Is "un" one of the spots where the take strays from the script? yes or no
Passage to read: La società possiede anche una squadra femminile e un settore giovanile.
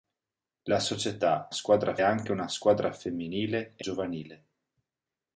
yes